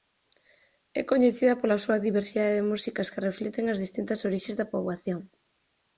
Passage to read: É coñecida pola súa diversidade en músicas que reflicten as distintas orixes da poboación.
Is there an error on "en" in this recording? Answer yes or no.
yes